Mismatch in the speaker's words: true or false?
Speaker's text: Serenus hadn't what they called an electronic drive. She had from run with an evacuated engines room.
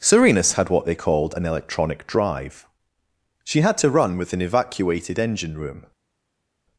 true